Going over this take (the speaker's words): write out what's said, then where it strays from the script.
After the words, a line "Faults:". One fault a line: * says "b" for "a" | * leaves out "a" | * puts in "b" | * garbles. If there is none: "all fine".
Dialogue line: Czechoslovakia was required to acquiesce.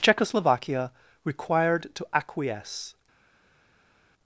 Czechoslovakia required to acquiesce.
Faults:
* leaves out "was"